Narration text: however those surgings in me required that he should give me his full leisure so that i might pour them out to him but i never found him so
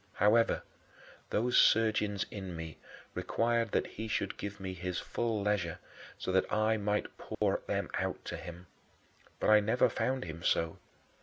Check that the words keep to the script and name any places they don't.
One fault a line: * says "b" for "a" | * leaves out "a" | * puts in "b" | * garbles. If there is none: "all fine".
all fine